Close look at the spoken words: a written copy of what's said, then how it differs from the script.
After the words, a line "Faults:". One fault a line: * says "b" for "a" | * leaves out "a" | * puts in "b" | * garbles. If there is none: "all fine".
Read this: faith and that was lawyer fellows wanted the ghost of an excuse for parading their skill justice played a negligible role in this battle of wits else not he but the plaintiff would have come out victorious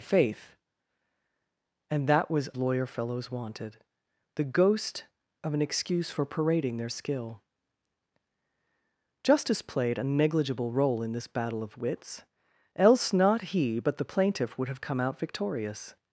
faith and that was lawyer fellows wanted the ghost of an excuse for parading their skill justice played a negligible role in this battle of wits else not he but the plaintiff would have come out victorious
Faults:
all fine